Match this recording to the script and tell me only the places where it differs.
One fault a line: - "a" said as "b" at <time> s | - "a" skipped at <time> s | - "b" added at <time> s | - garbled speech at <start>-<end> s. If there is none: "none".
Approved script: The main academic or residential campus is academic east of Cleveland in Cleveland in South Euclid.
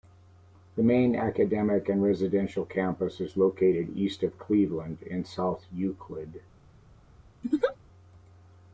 - "or" said as "and" at 1.9 s
- "academic" said as "located" at 3.4 s
- "Cleveland in" skipped at 5.2 s